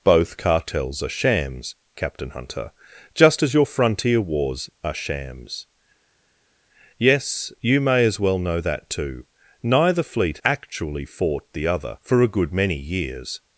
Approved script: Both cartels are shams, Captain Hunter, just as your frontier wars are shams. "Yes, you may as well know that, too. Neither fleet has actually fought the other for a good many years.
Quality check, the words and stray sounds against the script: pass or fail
fail